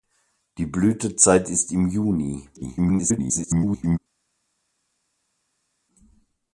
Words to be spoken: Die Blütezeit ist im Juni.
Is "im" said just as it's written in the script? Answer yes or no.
yes